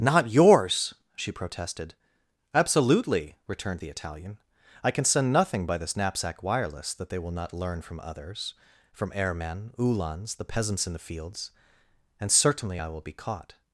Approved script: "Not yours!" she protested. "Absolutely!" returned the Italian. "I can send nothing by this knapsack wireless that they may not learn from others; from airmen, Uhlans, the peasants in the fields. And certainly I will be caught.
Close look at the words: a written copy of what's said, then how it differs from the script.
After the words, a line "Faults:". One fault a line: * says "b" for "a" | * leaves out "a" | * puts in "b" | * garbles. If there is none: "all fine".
"Not yours!" she protested. "Absolutely!" returned the Italian. "I can send nothing by this knapsack wireless that they will not learn from others; from airmen, Uhlans, the peasants in the fields. And certainly I will be caught.
Faults:
* says "will" for "may"